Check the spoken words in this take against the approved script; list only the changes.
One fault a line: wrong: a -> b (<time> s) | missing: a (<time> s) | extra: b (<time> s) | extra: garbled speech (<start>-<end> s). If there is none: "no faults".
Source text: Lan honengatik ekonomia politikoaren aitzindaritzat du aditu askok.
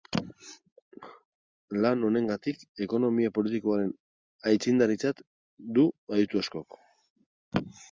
no faults